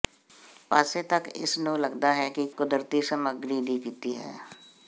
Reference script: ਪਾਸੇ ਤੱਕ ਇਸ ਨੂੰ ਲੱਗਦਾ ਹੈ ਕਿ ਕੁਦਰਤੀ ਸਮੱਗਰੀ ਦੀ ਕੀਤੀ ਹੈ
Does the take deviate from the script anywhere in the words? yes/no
no